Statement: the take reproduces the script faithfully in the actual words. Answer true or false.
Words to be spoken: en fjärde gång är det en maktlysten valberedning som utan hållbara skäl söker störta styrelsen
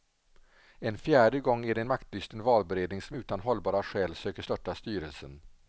true